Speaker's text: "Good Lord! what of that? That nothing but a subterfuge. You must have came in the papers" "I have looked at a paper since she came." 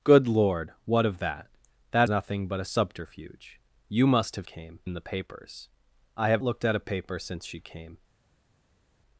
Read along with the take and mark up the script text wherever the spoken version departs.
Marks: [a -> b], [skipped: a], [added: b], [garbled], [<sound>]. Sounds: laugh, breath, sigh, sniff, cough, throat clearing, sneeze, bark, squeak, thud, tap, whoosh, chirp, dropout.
"Good Lord! what of that? That nothing but a subterfuge. You must have came in the papers" "I have looked at a paper since she came."